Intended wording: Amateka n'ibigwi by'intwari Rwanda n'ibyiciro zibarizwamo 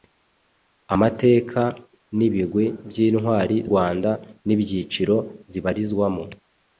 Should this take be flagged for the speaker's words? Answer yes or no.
no